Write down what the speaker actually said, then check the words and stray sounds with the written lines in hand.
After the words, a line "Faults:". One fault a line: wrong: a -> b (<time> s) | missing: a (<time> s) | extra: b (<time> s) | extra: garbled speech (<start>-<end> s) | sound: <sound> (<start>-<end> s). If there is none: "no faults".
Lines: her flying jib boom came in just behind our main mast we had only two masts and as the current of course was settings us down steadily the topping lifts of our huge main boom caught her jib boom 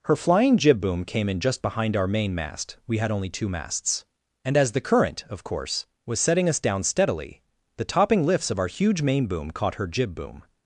her flying jib boom came in just behind our main mast we had only two masts and as the current of course was setting us down steadily the topping lifts of our huge main boom caught her jib boom
Faults:
wrong: settings -> setting (6.2 s)